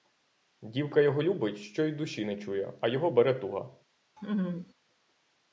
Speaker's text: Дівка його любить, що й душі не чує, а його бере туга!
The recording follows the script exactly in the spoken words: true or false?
true